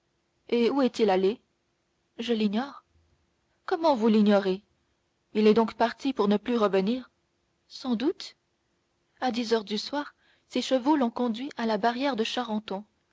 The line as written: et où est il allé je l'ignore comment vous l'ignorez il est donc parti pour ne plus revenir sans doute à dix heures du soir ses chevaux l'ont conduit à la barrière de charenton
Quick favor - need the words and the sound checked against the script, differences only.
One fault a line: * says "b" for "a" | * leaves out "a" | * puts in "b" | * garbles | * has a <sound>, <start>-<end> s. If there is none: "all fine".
all fine